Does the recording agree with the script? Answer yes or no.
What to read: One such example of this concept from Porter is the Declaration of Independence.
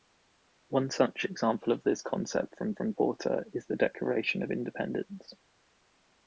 no